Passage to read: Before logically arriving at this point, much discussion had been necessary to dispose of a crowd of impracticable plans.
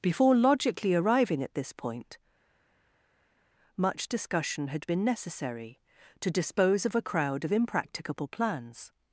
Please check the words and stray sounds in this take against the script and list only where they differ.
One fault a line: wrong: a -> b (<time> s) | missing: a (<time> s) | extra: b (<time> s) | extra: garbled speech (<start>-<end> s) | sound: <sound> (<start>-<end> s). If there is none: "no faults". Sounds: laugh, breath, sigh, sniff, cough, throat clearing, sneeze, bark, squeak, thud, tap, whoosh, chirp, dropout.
no faults